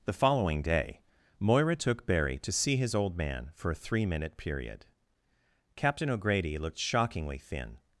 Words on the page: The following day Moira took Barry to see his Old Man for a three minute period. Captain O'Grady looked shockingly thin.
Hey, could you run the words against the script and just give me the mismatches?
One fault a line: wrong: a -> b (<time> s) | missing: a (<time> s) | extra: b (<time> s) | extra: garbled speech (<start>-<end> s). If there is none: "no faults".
no faults